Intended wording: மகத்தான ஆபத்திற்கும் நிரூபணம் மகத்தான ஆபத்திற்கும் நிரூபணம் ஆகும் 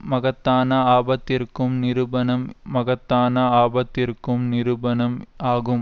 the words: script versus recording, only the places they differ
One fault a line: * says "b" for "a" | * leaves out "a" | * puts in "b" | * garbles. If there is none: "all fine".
all fine